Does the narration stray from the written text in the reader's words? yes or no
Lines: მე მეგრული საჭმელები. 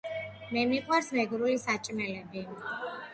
yes